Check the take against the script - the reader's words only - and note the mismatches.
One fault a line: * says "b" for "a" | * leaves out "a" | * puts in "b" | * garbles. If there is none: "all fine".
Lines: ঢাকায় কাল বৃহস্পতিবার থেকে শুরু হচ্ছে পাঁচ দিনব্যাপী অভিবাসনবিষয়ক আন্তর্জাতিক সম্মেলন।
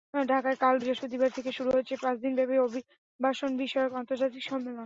all fine